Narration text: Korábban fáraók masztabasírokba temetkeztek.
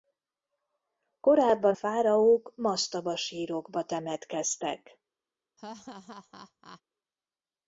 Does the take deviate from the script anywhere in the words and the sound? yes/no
yes